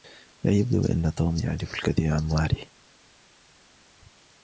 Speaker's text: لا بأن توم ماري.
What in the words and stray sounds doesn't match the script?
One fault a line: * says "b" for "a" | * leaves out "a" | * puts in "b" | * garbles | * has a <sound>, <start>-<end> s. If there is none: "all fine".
* puts in "يبدو"
* puts in "يعرف الكثير عن"